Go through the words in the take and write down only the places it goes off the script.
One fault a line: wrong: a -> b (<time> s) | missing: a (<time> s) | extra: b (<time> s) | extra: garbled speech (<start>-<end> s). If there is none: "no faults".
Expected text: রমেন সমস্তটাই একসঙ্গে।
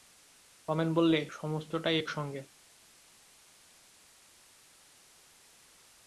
extra: বললে (0.9 s)